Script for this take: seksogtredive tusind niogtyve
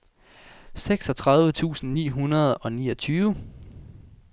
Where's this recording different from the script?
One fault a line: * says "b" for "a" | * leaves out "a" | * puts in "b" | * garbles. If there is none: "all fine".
* puts in "ni hundrede og"